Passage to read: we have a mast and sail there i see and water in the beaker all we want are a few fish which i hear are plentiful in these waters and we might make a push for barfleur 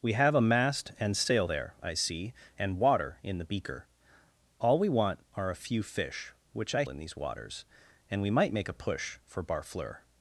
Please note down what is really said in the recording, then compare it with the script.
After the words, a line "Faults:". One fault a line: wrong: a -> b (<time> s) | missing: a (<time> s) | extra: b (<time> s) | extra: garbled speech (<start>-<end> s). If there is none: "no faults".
we have a mast and sail there i see and water in the beaker all we want are a few fish which i in these waters and we might make a push for barfleur
Faults:
missing: hear are plentiful (6.8 s)